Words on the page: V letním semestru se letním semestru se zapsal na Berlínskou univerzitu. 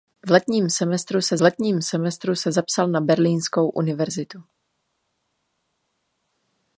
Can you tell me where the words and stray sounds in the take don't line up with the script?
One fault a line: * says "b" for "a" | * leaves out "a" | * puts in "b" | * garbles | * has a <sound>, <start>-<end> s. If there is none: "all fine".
all fine